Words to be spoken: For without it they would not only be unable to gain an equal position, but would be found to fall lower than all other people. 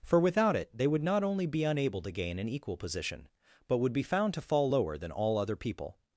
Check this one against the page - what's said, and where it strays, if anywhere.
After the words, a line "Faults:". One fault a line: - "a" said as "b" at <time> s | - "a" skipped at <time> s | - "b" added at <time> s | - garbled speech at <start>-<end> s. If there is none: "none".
For without it they would not only be unable to gain an equal position, but would be found to fall lower than all other people.
Faults:
none